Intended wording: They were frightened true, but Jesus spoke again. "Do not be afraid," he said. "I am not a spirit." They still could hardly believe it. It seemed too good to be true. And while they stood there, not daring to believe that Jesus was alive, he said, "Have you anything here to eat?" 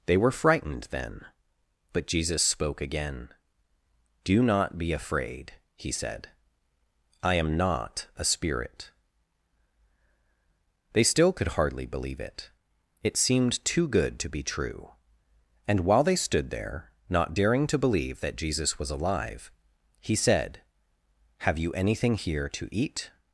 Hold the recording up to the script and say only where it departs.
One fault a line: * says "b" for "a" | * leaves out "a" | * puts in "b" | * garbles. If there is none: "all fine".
* says "then" for "true"